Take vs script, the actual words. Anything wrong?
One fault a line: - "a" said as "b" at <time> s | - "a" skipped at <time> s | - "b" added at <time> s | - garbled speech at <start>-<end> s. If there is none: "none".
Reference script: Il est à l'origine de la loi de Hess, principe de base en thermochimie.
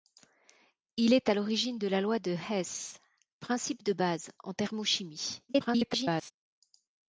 - garbled speech at 5.5-6.3 s